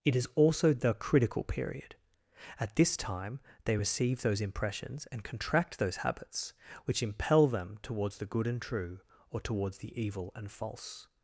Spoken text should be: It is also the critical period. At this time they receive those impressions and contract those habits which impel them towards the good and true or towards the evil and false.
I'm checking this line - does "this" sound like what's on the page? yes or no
yes